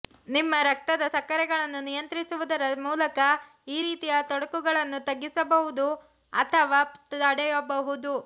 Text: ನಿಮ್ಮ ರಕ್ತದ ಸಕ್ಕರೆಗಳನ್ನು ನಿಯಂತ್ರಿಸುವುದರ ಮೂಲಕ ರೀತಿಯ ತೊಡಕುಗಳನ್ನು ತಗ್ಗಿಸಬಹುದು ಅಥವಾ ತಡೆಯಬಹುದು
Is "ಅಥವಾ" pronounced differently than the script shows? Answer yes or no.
no